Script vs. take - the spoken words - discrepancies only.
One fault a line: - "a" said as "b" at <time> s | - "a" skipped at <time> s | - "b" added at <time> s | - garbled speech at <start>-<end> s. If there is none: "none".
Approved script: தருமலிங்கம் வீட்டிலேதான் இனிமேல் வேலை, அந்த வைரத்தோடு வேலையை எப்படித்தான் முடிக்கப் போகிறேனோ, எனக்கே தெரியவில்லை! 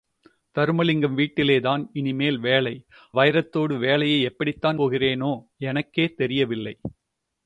- "அந்த" skipped at 2.7 s
- "முடிக்கப்" skipped at 4.8 s